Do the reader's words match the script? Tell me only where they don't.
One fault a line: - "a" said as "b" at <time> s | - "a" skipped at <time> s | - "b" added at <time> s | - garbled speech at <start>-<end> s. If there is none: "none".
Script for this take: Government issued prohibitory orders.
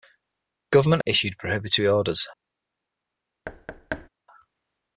none